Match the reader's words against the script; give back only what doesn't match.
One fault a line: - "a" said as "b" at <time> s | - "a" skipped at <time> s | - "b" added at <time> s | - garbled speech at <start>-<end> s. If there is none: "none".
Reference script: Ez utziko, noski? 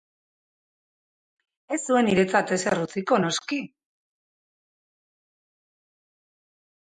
- "zuen niretzat ezer" added at 1.9 s